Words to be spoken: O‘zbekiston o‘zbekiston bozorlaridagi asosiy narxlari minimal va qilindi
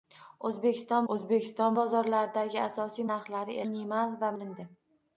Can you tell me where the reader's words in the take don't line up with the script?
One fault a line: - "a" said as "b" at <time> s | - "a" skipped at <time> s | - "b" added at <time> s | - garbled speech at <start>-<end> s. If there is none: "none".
none